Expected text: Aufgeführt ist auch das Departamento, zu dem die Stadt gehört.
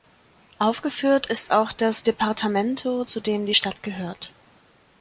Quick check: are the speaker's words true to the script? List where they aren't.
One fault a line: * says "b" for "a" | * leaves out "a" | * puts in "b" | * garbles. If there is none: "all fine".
all fine